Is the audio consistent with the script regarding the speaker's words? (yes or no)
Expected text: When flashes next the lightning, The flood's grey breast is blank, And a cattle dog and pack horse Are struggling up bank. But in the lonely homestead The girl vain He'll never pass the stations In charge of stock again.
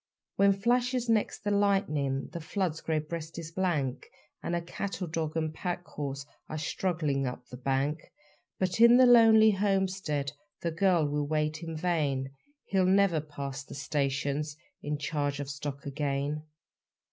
no